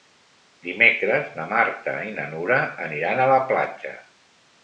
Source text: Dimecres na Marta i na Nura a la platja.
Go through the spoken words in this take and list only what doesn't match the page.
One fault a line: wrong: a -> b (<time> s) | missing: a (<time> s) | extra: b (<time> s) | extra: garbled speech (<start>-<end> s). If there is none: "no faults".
extra: aniran (2.9 s)